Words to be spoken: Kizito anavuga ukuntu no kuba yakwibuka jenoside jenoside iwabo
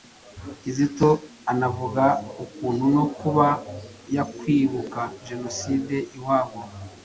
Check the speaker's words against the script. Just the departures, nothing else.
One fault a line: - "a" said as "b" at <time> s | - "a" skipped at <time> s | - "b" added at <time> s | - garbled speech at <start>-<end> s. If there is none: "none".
- "jenoside" skipped at 6.0 s